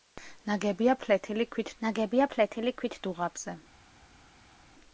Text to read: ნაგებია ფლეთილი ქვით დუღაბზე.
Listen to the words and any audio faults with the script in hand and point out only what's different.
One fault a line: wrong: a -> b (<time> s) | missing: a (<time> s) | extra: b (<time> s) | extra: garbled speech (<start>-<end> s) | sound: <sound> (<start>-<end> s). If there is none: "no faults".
extra: ნაგებია ფლეთილი ქვით (1.9 s)